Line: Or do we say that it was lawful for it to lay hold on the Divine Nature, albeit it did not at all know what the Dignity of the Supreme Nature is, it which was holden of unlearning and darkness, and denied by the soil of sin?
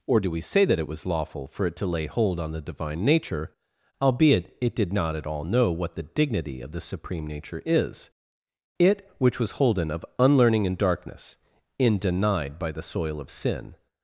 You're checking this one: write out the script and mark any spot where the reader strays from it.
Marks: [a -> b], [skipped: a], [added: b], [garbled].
Or do we say that it was lawful for it to lay hold on the Divine Nature, albeit it did not at all know what the Dignity of the Supreme Nature is, it which was holden of unlearning and darkness, [and -> in] denied by the soil of sin?